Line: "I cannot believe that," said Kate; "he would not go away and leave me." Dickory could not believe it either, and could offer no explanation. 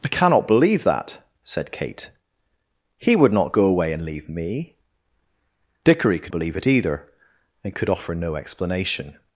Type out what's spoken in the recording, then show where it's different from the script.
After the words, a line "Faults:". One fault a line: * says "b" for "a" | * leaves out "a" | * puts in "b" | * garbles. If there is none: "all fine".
"I cannot believe that," said Kate; "he would not go away and leave me." Dickory could believe it either, and could offer no explanation.
Faults:
* leaves out "not"